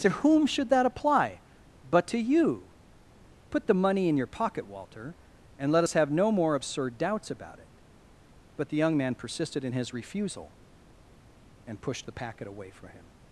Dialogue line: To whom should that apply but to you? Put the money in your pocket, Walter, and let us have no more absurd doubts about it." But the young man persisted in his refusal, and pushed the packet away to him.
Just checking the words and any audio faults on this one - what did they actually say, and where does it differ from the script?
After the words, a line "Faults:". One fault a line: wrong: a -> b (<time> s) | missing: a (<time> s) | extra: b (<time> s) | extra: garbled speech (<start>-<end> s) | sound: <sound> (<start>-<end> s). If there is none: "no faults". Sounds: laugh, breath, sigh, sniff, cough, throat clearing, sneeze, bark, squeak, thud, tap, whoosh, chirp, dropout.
To whom should that apply but to you? Put the money in your pocket, Walter, and let us have no more absurd doubts about it." But the young man persisted in his refusal, and pushed the packet away from him.
Faults:
wrong: to -> from (12.7 s)